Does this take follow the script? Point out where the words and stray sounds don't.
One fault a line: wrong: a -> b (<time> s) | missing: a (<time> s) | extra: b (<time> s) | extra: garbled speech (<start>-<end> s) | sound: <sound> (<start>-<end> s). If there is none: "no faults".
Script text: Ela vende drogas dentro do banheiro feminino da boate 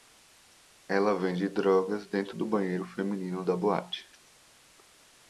no faults